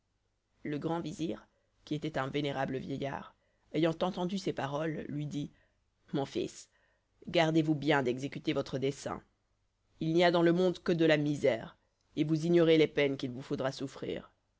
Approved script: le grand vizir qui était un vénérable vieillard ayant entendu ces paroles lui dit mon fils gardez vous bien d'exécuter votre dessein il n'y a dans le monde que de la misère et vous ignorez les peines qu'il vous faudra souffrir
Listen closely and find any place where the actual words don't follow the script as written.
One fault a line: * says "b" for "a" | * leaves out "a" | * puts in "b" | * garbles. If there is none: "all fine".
all fine